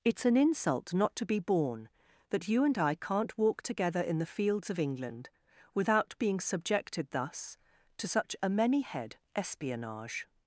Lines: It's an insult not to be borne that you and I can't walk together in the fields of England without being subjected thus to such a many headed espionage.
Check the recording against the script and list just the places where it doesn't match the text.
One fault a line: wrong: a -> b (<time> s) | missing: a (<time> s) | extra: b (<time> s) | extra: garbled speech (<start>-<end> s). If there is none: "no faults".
wrong: headed -> head (8.8 s)